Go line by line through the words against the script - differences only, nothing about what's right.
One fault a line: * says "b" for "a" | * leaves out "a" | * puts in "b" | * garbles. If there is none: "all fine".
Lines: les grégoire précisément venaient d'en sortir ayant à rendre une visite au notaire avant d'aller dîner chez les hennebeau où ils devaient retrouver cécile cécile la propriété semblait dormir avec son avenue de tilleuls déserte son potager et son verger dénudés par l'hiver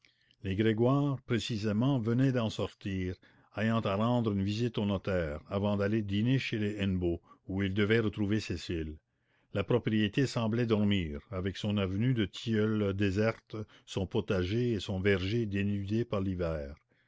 * leaves out "cécile"